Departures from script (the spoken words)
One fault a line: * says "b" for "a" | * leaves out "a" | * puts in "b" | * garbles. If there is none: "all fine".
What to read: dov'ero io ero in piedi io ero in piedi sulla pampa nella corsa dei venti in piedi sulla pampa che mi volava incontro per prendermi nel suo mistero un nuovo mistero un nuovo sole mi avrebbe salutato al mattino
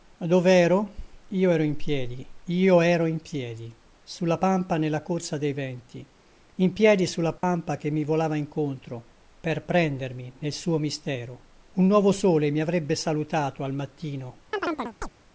* leaves out "mistero un nuovo"